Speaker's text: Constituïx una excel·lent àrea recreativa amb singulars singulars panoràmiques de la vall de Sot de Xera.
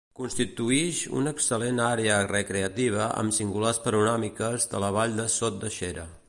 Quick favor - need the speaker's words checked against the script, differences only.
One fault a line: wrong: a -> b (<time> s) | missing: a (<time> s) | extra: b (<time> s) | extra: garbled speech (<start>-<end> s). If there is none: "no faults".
missing: singulars (3.8 s)